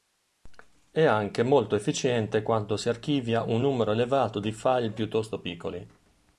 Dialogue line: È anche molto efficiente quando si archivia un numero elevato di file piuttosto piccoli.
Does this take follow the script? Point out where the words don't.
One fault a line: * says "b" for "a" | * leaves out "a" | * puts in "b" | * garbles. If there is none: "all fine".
all fine